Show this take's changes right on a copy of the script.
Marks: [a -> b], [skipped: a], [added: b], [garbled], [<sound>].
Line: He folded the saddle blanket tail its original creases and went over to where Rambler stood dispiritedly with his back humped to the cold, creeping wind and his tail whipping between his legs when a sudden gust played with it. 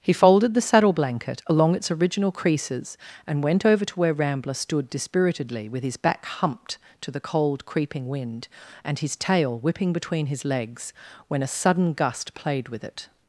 He folded the saddle blanket [tail -> along] its original creases and went over to where Rambler stood dispiritedly with his back humped to the cold, creeping wind and his tail whipping between his legs when a sudden gust played with it.